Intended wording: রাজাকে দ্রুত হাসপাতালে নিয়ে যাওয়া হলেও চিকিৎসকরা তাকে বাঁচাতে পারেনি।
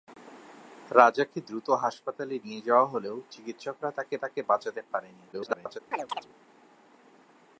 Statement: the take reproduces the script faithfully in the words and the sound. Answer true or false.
false